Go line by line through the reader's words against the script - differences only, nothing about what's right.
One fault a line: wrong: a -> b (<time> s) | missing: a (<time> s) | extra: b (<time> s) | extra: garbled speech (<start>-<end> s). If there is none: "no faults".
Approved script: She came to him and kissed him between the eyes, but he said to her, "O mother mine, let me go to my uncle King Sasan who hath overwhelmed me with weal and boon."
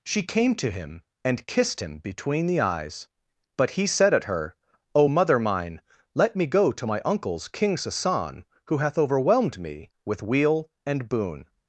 wrong: to -> at (4.1 s)
wrong: uncle -> uncles (7.0 s)